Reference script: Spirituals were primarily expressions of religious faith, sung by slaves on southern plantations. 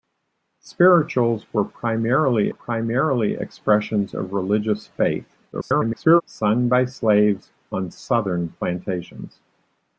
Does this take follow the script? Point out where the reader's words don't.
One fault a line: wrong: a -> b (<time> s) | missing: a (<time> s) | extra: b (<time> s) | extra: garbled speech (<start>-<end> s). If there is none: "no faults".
extra: primarily (2.5 s)
extra: garbled speech (5.5-6.2 s)